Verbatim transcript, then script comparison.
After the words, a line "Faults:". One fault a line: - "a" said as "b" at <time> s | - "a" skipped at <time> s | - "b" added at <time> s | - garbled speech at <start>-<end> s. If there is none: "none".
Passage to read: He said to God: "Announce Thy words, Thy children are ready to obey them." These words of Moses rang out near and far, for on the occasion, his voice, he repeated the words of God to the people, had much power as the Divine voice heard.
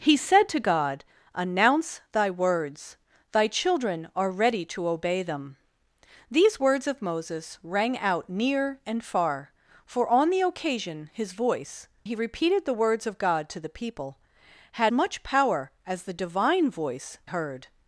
He said to God: "Announce Thy words, Thy children are ready to obey them." These words of Moses rang out near and far, for on the occasion, his voice, he repeated the words of God to the people, had much power as the Divine voice heard.
Faults:
none